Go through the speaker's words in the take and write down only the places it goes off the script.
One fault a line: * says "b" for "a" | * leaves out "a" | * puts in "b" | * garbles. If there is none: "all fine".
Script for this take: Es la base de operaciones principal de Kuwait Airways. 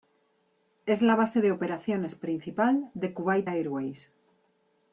all fine